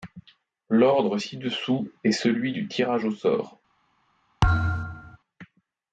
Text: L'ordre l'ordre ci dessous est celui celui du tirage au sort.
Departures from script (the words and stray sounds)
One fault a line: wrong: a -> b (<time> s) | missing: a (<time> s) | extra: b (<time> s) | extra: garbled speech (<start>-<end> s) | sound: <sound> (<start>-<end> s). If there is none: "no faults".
missing: l'ordre (1.2 s)
missing: celui (2.5 s)
sound: thud (4.4-5.2 s)